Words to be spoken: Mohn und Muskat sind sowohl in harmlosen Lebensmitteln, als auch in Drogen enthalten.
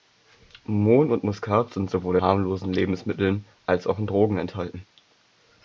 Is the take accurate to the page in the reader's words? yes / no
no